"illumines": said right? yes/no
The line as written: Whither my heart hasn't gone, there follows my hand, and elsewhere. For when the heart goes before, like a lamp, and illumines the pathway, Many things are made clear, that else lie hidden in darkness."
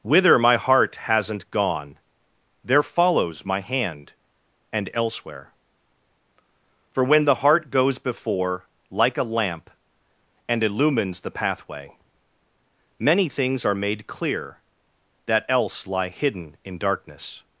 yes